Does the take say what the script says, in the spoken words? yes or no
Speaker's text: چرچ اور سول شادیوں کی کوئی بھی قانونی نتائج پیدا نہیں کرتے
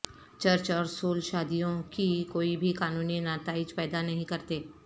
yes